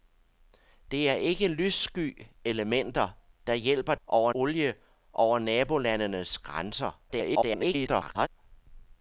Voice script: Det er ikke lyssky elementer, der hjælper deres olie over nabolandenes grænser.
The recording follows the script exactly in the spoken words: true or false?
false